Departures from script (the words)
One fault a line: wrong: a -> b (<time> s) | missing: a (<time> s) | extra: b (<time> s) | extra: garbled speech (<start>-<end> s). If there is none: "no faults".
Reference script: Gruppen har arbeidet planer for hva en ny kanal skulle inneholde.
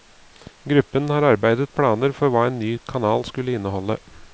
no faults